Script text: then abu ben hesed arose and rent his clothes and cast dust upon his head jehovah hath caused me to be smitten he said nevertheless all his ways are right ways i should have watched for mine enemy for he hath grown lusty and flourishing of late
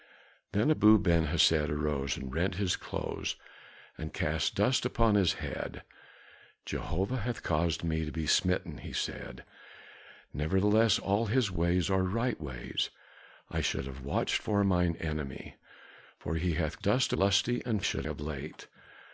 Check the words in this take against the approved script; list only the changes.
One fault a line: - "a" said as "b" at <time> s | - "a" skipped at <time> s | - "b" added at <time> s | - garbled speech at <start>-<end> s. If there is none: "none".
- "grown" said as "dust" at 16.8 s
- "flourishing" said as "should" at 17.8 s